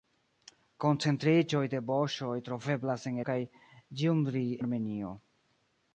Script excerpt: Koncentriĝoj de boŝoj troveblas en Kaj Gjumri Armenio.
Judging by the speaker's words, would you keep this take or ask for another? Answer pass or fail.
pass